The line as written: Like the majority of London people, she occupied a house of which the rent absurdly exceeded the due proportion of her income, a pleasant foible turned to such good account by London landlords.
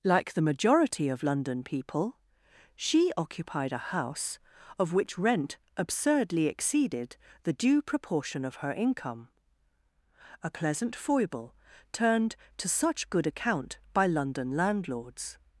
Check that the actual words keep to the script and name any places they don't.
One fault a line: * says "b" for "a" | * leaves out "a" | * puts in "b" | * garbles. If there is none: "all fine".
* leaves out "the"